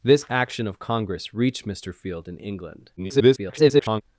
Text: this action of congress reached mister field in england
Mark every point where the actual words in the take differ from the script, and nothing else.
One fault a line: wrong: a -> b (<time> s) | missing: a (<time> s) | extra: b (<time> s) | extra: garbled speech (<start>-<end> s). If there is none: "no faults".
extra: garbled speech (3.0-4.0 s)